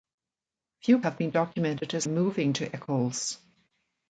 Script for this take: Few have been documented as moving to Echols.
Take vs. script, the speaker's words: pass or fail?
pass